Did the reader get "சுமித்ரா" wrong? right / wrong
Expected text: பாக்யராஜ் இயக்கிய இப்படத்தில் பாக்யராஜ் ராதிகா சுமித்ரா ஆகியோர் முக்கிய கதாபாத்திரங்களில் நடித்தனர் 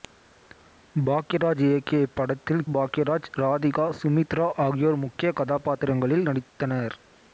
right